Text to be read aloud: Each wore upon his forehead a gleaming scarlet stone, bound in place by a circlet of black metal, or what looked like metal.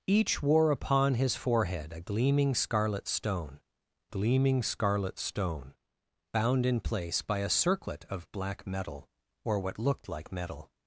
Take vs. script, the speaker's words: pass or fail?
fail